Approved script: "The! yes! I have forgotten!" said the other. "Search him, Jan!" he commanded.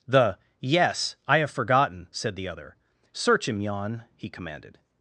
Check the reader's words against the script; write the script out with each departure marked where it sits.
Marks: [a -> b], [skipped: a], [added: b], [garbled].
"The! yes! I have forgotten!" said the other. "Search him, Jan!" he commanded.